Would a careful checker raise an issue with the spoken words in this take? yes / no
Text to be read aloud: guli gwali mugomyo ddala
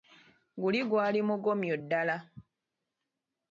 no